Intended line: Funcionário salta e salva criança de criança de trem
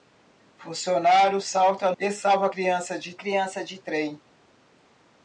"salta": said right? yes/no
yes